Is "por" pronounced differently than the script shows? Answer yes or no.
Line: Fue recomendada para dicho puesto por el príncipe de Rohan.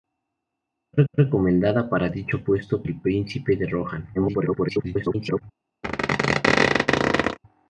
yes